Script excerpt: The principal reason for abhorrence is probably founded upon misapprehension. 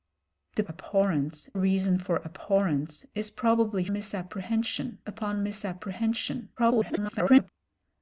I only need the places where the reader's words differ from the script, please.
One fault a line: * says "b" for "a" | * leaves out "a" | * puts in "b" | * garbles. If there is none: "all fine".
* says "abhorrence" for "principal"
* says "misapprehension" for "founded"
* garbles